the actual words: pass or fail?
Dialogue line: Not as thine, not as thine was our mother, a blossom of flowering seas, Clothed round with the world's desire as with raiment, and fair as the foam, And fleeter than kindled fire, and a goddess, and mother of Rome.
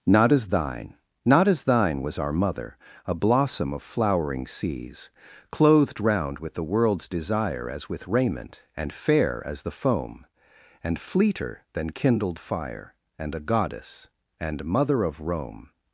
pass